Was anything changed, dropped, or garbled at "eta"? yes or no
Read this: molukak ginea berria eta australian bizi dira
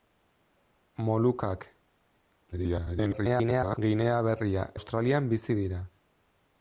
yes